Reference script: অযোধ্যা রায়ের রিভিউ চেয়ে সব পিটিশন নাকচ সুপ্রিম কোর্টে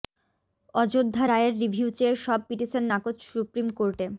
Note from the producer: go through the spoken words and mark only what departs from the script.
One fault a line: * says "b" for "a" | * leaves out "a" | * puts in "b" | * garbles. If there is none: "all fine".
all fine